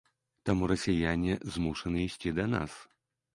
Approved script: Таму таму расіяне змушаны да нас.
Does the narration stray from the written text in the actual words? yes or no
yes